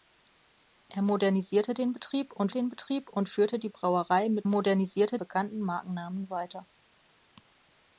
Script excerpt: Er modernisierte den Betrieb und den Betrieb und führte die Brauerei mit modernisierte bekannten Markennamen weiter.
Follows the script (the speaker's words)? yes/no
yes